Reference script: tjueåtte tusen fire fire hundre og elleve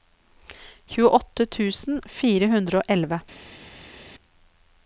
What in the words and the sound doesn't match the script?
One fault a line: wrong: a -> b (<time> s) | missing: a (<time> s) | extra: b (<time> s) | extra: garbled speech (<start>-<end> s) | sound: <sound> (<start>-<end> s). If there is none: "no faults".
missing: fire (2.5 s)